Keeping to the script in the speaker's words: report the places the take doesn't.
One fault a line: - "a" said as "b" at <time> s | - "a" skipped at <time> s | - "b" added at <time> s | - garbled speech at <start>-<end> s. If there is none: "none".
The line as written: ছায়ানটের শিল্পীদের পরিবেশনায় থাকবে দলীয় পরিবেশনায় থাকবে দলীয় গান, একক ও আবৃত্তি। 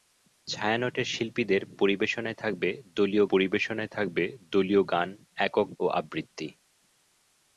none